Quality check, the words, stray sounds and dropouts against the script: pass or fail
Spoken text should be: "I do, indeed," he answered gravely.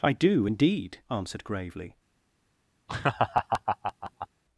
fail